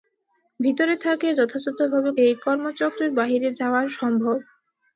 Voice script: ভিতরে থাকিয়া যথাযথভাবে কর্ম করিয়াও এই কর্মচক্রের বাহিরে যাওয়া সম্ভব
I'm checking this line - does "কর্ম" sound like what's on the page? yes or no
no